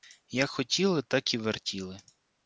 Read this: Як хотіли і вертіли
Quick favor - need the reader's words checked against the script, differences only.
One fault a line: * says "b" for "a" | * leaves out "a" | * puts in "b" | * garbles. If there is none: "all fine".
* puts in "так"